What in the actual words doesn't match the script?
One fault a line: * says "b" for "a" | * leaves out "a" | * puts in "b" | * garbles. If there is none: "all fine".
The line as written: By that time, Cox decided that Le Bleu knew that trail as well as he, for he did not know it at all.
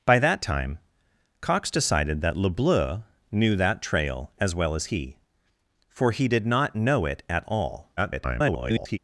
* garbles